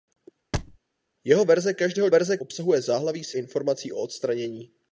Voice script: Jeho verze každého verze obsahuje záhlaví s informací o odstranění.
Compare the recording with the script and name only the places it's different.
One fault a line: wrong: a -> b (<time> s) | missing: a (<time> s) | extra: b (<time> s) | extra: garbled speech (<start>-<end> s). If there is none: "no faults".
no faults